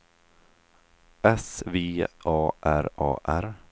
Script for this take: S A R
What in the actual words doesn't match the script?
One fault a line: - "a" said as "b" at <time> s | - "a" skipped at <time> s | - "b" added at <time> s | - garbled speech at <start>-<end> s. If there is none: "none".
- "V A R" added at 1.7 s